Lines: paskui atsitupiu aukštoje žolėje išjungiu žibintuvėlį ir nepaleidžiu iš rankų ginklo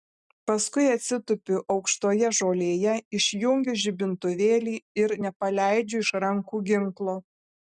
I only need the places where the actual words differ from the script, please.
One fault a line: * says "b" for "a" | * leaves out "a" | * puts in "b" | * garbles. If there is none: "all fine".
all fine